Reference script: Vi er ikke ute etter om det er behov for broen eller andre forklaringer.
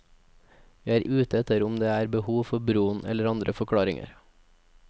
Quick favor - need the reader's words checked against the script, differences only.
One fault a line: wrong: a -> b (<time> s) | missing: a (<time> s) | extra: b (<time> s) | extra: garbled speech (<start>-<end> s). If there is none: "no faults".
missing: ikke (1.0 s)